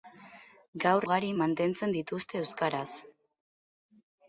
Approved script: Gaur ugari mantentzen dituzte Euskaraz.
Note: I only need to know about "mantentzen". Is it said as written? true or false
true